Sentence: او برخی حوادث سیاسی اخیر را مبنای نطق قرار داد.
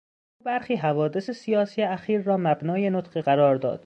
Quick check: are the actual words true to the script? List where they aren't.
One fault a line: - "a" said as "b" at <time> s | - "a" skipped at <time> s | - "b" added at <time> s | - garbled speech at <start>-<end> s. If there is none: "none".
none